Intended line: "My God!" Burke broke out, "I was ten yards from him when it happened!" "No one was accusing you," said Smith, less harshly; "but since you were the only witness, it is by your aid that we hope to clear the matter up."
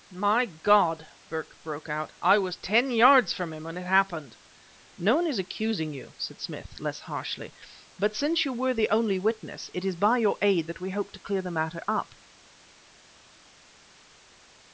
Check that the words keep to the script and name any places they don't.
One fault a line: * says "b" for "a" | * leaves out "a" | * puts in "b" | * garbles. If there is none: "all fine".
* says "is" for "was"